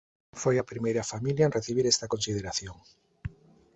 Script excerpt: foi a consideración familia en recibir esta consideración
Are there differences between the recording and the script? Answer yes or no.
yes